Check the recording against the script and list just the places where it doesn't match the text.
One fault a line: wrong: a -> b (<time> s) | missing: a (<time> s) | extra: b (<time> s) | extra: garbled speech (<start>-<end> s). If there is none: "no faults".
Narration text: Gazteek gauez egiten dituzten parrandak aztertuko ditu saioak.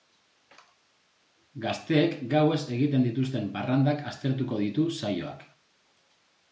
no faults